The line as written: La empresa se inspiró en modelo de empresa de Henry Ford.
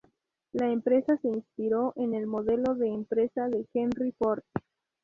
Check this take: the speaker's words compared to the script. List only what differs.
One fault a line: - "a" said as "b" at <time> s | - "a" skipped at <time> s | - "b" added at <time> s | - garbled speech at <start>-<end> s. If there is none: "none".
- "el" added at 2.1 s